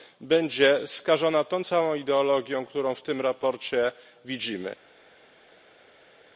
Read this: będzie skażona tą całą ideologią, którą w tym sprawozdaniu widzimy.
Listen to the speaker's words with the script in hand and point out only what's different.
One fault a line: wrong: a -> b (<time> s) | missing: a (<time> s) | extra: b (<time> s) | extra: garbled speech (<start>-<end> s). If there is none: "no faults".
no faults